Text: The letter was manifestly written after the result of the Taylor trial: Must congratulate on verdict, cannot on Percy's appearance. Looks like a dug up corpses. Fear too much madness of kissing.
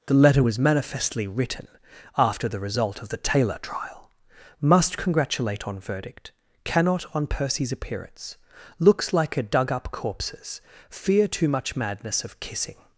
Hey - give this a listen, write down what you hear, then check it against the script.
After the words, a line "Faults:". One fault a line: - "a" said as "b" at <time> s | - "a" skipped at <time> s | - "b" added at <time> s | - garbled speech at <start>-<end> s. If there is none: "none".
The letter was manifestly written after the result of the Taylor trial: Must congratulate on verdict, cannot on Percy's appearance. Looks like a dug up corpses. Fear too much madness of kissing.
Faults:
none